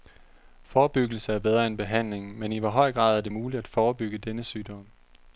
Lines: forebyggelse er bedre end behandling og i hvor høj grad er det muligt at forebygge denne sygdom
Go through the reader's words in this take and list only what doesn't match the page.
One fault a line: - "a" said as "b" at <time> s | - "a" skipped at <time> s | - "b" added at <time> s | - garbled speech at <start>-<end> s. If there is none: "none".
- "og" said as "men" at 2.4 s